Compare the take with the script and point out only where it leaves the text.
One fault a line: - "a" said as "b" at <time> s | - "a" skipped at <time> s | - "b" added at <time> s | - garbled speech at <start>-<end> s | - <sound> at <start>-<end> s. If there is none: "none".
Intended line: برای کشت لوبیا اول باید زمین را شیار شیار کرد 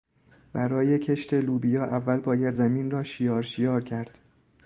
none